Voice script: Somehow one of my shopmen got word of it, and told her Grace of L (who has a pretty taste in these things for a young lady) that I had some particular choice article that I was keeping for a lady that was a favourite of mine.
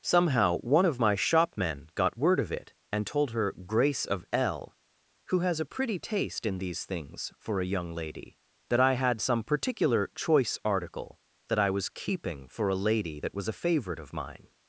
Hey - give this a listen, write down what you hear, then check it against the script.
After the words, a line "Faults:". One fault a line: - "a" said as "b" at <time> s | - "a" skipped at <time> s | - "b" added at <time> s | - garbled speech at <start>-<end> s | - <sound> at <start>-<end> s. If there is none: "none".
Somehow one of my shopmen got word of it, and told her Grace of L (who has a pretty taste in these things for a young lady) that I had some particular choice article that I was keeping for a lady that was a favourite of mine.
Faults:
none